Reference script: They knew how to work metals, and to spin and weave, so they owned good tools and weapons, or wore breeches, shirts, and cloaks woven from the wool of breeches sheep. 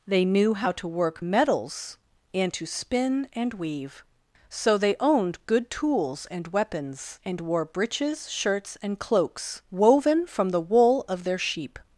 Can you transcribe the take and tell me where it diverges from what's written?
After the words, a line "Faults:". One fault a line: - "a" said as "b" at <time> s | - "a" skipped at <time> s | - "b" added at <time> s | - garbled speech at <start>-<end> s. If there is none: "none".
They knew how to work metals, and to spin and weave, so they owned good tools and weapons, and wore breeches, shirts, and cloaks woven from the wool of their sheep.
Faults:
- "or" said as "and" at 7.2 s
- "breeches" said as "their" at 11.2 s